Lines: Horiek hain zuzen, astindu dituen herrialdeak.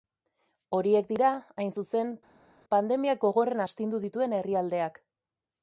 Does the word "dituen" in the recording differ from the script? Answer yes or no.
no